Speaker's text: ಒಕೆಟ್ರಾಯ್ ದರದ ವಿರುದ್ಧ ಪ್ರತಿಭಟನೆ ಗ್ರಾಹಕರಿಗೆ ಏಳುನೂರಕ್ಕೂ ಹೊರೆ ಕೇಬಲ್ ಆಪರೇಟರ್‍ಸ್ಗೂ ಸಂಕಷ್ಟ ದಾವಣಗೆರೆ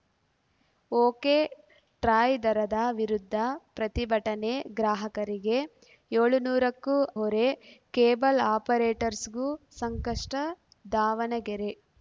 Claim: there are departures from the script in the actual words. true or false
false